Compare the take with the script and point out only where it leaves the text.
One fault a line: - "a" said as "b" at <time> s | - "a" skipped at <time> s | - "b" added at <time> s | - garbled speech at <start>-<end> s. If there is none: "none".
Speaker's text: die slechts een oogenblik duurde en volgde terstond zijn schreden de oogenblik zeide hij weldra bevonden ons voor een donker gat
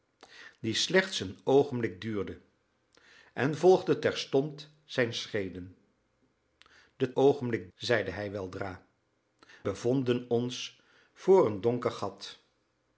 none